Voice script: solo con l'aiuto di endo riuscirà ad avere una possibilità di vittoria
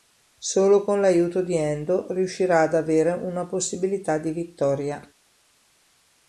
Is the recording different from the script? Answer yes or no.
no